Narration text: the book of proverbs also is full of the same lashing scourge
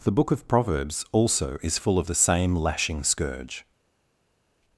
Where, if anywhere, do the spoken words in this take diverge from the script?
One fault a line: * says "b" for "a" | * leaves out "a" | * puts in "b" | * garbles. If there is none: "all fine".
all fine